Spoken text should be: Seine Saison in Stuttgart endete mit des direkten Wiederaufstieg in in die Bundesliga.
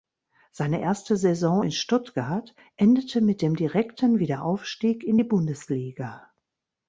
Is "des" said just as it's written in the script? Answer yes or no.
no